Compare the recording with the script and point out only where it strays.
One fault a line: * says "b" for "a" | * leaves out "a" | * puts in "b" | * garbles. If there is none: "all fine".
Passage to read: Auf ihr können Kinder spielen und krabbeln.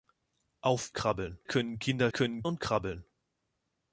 * says "krabbeln" for "ihr"
* says "können" for "spielen"